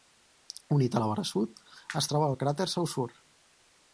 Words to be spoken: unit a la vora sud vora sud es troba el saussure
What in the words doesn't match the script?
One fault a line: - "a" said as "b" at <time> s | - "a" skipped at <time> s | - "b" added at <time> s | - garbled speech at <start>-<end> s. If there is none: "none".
- "vora sud" skipped at 1.6 s
- "cràter" added at 2.4 s